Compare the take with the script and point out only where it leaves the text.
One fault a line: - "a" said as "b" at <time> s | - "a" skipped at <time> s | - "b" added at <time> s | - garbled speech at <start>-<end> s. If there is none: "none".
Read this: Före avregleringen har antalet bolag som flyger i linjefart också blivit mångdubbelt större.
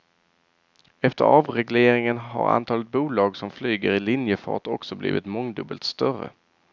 - "Före" said as "Efter" at 1.0 s